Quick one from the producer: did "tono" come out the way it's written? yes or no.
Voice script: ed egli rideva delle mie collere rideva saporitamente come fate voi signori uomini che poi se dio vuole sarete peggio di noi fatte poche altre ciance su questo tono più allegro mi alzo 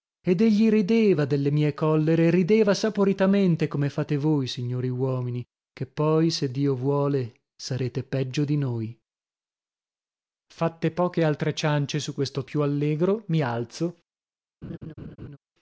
no